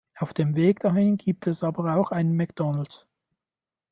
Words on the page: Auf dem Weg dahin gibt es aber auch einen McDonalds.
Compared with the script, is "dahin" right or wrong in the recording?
right